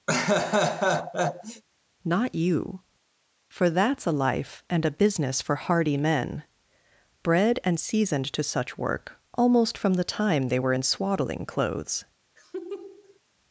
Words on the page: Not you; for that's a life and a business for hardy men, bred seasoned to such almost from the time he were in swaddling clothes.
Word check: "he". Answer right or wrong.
wrong